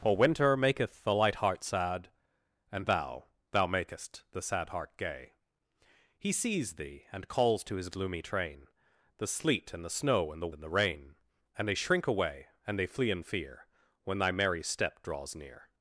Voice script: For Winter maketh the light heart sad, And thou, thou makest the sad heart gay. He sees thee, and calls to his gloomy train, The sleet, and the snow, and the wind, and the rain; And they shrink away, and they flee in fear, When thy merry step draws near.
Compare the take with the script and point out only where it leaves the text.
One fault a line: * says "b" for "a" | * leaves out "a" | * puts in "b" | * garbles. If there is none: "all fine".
* leaves out "wind"